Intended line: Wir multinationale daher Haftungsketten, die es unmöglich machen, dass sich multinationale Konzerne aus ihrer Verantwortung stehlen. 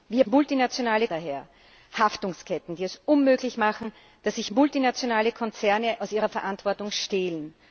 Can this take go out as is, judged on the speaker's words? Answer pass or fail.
pass